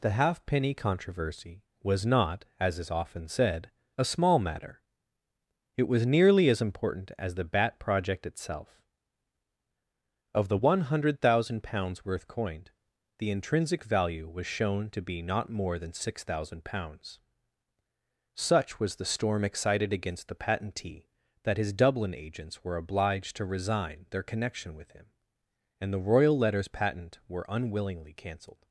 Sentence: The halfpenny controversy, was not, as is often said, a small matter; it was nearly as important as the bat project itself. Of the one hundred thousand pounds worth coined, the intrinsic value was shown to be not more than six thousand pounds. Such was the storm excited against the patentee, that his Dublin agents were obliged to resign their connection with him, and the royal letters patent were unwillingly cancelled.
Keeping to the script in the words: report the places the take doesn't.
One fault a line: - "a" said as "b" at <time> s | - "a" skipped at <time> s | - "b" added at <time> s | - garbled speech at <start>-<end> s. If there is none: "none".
none